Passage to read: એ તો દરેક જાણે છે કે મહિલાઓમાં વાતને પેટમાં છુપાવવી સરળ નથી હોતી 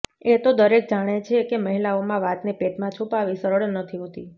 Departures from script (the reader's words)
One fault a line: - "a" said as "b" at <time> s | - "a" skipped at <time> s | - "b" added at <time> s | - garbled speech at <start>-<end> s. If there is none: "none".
none